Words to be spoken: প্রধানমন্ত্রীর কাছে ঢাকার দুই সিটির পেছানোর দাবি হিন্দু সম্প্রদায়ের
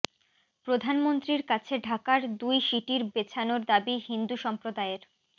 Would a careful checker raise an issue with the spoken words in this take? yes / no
no